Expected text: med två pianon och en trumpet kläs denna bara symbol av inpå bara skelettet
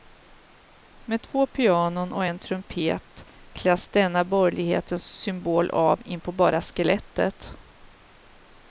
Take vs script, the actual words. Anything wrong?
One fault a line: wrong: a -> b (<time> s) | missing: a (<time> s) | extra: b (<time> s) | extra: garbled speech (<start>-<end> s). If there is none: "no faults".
wrong: bara -> borgerlighetens (4.2 s)